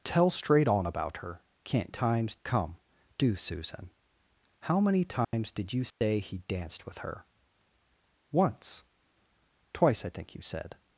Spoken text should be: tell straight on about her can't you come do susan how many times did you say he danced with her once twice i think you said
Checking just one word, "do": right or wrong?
right